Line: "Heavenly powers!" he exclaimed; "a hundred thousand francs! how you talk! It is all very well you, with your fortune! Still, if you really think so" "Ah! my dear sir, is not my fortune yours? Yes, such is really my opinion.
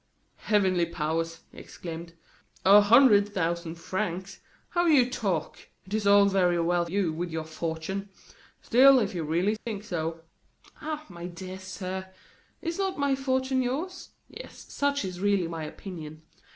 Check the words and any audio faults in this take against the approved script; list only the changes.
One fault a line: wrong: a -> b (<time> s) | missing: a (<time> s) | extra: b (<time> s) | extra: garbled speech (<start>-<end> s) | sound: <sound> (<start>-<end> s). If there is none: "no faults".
sound: dropout (9.6-9.7 s)